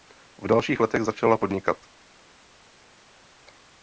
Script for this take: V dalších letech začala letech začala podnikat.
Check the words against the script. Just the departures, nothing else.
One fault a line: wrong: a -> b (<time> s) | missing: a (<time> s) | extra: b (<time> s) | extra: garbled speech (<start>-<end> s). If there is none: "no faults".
missing: letech začala (1.4 s)